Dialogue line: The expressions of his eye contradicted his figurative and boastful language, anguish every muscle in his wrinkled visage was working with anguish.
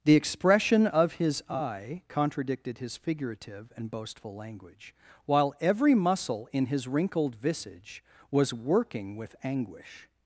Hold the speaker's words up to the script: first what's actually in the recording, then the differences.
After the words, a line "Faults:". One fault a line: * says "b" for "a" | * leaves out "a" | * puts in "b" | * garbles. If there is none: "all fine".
The expression of his eye contradicted his figurative and boastful language, while every muscle in his wrinkled visage was working with anguish.
Faults:
* says "expression" for "expressions"
* says "while" for "anguish"